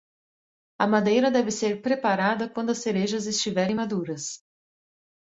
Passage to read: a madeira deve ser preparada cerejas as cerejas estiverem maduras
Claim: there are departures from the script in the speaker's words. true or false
true